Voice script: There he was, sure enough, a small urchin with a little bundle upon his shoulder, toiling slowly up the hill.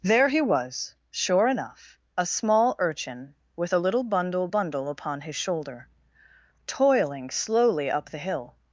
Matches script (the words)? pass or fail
fail